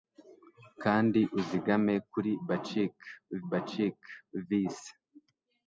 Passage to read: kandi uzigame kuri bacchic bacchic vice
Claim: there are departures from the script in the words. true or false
false